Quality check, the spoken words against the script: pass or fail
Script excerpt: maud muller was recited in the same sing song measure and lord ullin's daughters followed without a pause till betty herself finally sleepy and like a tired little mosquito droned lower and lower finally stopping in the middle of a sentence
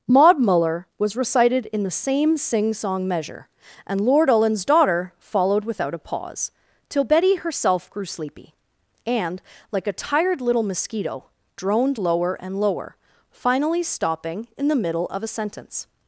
fail